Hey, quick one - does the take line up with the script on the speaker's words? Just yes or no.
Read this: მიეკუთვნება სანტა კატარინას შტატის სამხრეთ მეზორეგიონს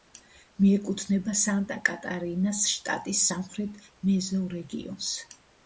yes